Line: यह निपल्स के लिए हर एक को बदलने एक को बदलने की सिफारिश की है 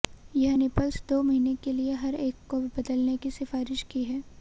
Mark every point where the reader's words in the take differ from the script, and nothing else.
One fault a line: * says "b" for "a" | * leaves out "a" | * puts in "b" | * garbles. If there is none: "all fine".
* puts in "दो महीने"
* leaves out "एक को बदलने"